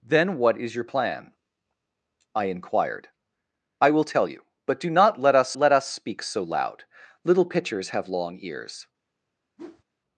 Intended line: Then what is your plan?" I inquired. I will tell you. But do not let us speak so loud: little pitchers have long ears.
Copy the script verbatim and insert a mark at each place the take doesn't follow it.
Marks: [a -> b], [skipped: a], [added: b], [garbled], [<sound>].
Then what is your plan?" I inquired. I will tell you. But do not let us [added: let us] speak so loud: little pitchers have long ears. [whoosh]